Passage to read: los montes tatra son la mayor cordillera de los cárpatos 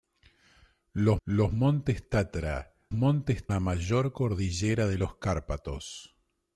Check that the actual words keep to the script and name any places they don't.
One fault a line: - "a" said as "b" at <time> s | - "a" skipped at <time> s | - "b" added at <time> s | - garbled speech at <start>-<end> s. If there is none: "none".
- "los" added at 1.2 s
- "son" said as "montes" at 2.9 s